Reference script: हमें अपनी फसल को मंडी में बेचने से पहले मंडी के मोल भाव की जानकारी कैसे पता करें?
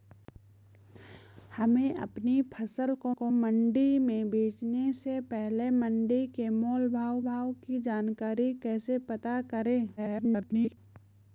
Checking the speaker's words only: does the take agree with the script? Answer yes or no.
no